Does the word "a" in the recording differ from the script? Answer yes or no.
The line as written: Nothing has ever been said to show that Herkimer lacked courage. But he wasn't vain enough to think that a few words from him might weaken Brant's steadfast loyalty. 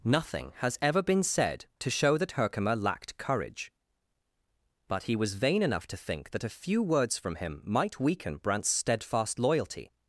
no